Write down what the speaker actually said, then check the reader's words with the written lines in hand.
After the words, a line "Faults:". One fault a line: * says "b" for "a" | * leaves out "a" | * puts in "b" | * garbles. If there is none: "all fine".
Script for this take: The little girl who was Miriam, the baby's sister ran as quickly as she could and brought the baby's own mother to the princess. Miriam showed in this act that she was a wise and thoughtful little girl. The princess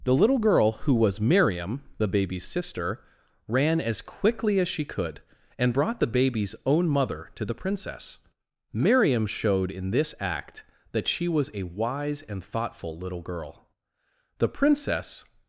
The little girl who was Miriam, the baby's sister ran as quickly as she could and brought the baby's own mother to the princess. Miriam showed in this act that she was a wise and thoughtful little girl. The princess
Faults:
all fine